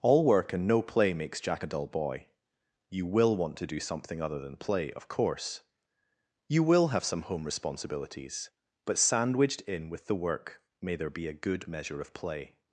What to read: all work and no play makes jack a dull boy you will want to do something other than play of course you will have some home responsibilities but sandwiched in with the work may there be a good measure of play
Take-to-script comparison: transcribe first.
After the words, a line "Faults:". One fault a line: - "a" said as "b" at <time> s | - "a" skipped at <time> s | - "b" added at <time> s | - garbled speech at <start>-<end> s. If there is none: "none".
all work and no play makes jack a dull boy you will want to do something other than play of course you will have some home responsibilities but sandwiched in with the work may there be a good measure of play
Faults:
none